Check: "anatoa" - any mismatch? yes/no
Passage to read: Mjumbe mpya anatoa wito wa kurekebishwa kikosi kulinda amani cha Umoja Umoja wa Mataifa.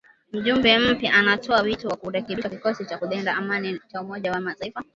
no